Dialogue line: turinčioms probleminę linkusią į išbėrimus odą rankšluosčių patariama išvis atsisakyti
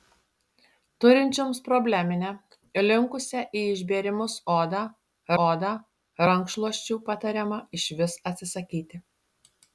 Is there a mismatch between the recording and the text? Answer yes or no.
yes